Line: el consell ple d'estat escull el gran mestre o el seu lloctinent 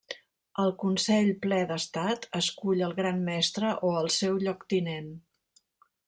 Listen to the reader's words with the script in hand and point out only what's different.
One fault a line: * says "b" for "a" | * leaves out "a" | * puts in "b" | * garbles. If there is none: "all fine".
all fine